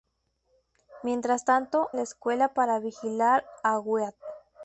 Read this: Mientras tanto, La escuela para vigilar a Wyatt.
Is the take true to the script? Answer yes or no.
yes